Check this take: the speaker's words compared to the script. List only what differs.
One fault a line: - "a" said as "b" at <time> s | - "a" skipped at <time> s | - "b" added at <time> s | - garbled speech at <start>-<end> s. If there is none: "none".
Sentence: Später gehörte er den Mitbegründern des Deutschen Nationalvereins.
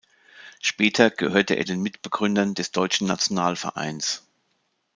none